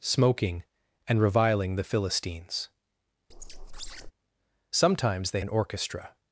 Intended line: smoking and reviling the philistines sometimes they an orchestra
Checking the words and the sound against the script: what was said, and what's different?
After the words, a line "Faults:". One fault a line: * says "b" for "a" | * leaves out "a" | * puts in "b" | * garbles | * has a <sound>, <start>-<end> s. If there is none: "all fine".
smoking and reviling the philistines sometimes they an orchestra
Faults:
* has a squeak, 3.3-4.1 s